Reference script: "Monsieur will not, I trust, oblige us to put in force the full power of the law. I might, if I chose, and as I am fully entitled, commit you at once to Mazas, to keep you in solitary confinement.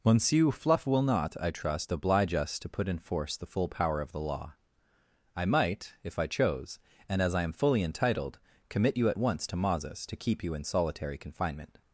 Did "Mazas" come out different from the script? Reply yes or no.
no